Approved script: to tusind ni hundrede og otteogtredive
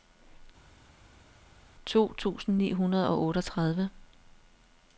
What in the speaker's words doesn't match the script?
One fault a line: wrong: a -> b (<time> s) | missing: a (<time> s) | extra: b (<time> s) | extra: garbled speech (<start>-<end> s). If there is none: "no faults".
no faults